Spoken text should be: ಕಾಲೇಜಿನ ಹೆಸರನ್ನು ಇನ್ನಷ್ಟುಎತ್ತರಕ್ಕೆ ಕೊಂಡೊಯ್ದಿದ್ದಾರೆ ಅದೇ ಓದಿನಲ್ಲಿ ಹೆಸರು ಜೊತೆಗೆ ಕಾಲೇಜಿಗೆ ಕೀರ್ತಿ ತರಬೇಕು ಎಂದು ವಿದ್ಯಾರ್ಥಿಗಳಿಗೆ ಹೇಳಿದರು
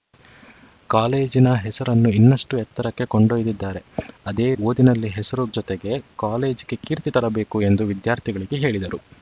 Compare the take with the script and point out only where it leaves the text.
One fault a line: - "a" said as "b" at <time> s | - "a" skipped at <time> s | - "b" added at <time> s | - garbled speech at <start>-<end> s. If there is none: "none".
none